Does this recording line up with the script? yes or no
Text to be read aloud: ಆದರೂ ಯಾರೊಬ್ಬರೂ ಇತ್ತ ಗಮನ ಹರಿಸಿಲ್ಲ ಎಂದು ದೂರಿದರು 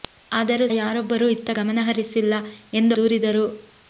yes